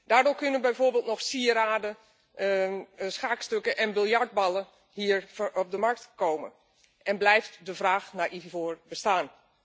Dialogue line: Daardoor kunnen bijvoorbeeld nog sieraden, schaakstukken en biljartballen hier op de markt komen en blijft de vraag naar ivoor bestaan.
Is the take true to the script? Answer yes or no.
yes